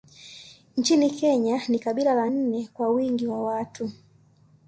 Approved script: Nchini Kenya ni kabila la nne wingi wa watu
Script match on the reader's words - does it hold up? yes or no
no